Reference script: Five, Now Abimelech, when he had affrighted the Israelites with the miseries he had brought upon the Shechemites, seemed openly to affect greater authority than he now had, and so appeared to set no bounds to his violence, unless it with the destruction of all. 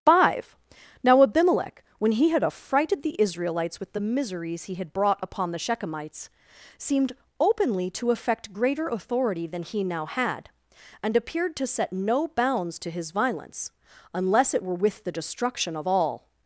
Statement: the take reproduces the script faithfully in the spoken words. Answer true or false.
false